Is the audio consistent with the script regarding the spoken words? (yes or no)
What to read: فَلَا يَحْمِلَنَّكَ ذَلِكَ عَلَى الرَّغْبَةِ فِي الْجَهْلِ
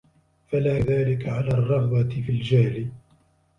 no